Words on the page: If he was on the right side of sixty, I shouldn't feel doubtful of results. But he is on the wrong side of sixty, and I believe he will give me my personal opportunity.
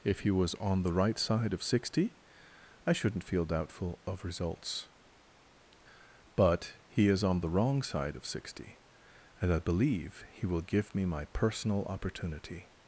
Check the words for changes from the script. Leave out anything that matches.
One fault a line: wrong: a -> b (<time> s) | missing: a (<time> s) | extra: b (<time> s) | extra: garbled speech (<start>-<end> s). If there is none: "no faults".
no faults